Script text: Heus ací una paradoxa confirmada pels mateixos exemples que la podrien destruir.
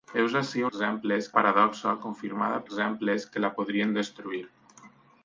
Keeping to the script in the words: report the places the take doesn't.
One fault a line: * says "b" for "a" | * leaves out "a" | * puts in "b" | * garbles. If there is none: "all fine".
* says "exemples" for "una"
* leaves out "pels mateixos"